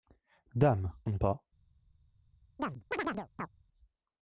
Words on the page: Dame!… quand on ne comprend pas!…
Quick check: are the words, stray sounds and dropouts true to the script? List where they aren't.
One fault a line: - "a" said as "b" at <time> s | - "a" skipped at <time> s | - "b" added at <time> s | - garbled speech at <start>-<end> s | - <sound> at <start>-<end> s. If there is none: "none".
- "quand" skipped at 0.9 s
- "comprend" skipped at 1.2 s
- chirp at 2.6-3.5 s